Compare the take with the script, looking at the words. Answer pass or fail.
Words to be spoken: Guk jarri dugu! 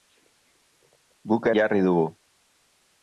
pass